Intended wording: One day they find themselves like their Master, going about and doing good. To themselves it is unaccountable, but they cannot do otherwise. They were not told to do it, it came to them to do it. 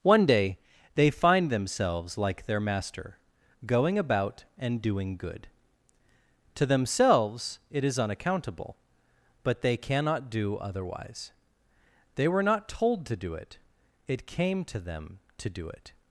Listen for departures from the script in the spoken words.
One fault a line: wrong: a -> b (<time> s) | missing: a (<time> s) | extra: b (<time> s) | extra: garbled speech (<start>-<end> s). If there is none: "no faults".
no faults